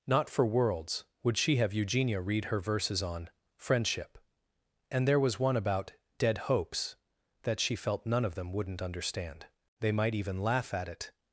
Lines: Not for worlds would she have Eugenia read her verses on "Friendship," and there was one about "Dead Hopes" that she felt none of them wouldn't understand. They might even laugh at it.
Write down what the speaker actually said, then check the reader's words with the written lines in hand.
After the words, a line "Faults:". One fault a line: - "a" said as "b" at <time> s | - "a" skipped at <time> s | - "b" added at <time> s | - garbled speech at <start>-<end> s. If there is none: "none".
Not for worlds would she have Eugenia read her verses on "Friendship," and there was one about "Dead Hopes" that she felt none of them wouldn't understand. They might even laugh at it.
Faults:
none